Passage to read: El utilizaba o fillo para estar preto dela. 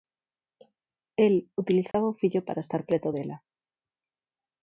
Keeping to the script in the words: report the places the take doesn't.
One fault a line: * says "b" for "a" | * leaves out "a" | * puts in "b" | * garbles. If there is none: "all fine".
all fine